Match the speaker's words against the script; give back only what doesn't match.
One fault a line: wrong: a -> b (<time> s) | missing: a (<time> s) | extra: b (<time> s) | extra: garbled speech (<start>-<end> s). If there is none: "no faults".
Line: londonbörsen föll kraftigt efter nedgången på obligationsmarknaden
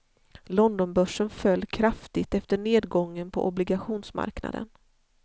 no faults